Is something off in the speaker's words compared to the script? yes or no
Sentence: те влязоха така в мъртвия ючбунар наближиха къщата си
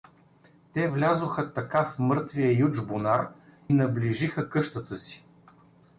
no